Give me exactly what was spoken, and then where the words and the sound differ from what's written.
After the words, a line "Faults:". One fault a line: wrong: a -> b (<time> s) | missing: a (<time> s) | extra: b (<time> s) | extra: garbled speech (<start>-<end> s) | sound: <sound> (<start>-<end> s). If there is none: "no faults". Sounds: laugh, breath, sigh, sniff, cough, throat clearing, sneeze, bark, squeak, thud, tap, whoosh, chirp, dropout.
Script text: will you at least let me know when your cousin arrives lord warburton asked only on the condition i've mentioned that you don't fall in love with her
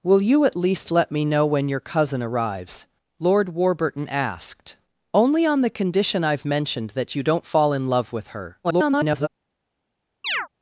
will you at least let me know when your cousin arrives lord warburton asked only on the condition i've mentioned that you don't fall in love with her [garbled]
Faults:
extra: garbled speech (8.6-9.3 s)
sound: chirp (10.2-10.5 s)